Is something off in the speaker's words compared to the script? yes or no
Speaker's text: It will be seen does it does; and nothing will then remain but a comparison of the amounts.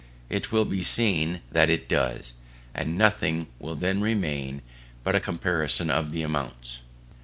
yes